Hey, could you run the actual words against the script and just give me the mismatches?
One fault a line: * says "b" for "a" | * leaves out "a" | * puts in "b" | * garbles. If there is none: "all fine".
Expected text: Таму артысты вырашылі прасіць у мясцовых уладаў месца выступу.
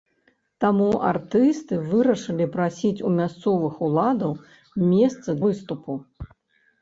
all fine